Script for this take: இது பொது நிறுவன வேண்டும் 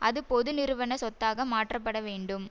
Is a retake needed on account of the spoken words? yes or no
yes